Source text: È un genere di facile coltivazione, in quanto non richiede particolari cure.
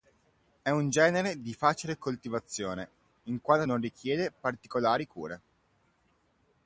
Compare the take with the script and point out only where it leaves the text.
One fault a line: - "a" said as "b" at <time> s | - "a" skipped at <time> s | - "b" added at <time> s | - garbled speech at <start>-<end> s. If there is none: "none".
none